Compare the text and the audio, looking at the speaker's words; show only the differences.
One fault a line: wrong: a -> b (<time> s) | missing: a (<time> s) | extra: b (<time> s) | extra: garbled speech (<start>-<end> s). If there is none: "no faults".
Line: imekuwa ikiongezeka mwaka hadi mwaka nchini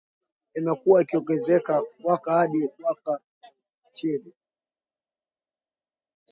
no faults